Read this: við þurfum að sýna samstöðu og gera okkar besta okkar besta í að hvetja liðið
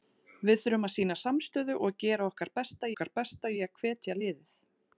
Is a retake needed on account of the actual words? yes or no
no